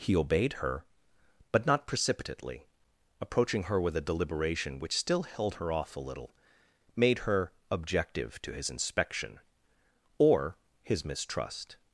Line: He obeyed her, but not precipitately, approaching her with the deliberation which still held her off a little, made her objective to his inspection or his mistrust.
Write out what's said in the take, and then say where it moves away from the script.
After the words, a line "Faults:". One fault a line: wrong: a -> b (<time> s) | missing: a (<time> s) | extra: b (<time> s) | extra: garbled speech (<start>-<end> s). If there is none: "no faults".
He obeyed her, but not precipitately, approaching her with a deliberation which still held her off a little, made her objective to his inspection or his mistrust.
Faults:
wrong: the -> a (4.0 s)